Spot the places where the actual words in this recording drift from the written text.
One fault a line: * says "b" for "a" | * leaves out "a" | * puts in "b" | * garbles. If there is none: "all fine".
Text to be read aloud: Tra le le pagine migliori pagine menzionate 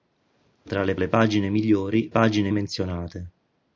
all fine